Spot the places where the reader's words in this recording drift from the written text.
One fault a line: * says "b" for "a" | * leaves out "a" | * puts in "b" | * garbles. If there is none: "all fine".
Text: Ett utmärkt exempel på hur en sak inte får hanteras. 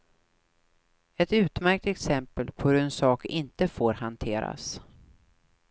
all fine